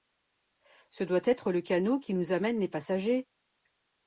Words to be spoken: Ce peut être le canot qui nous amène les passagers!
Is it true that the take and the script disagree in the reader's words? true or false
true